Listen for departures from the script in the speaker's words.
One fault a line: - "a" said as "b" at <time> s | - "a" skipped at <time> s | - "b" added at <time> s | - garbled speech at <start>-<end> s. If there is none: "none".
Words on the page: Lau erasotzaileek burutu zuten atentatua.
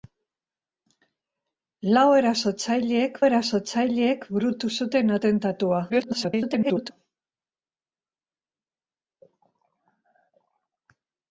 - "erasotzaileek" added at 3.3 s
- garbled speech at 5.9-6.9 s